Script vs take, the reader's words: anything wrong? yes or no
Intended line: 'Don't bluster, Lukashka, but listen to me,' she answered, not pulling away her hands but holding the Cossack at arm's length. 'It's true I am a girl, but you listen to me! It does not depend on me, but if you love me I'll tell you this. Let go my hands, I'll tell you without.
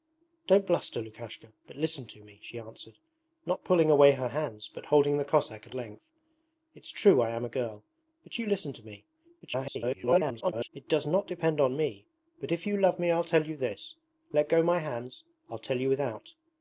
yes